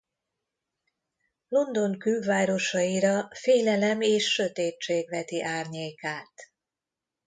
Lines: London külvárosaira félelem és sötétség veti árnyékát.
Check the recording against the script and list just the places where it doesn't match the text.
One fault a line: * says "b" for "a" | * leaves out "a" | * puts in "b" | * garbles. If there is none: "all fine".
all fine